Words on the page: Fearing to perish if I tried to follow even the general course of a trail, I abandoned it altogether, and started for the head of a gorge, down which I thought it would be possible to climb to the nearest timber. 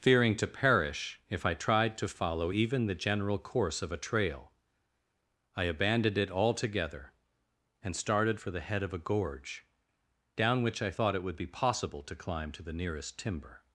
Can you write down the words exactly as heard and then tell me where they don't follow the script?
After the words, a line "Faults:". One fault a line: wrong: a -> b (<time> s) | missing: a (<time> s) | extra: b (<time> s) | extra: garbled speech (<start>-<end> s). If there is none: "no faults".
Fearing to perish if I tried to follow even the general course of a trail, I abandoned it altogether, and started for the head of a gorge, down which I thought it would be possible to climb to the nearest timber.
Faults:
no faults